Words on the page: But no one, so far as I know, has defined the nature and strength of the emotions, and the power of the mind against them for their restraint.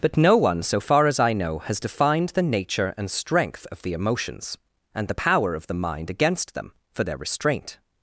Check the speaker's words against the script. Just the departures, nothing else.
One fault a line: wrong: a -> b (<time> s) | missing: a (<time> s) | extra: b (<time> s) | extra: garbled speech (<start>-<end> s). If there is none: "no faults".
no faults